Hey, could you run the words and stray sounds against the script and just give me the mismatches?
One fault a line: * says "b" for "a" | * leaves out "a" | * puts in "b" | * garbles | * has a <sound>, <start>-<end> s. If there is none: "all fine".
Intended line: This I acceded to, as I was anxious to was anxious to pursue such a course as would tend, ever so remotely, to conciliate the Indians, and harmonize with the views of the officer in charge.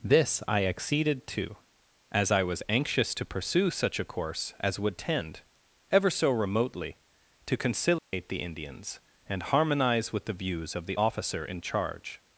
* leaves out "was anxious to"
* has a dropout, 8.0-8.1 s